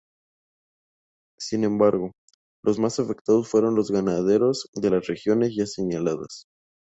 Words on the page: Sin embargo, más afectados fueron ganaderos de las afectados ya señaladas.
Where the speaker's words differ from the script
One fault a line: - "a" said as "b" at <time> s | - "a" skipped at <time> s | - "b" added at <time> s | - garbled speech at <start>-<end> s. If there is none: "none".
- "los" added at 2.6 s
- "los" added at 3.7 s
- "afectados" said as "regiones" at 5.1 s